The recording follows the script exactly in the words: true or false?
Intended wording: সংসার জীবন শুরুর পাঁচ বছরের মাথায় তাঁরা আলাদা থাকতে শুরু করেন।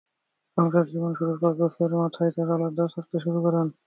true